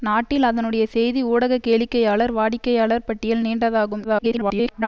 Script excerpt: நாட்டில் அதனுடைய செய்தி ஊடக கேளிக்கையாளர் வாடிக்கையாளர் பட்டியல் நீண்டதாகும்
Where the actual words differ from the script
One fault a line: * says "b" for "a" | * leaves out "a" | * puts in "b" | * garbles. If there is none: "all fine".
* garbles